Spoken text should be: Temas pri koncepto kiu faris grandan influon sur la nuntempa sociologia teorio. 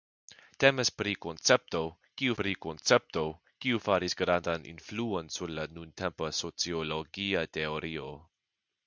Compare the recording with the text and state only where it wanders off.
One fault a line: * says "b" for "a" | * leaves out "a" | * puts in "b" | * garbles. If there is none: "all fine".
* puts in "pri koncepto kiu"